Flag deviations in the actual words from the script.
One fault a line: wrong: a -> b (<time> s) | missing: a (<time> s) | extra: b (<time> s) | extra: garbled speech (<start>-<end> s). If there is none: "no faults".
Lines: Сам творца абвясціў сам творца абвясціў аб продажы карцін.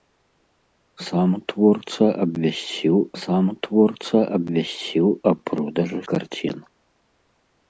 no faults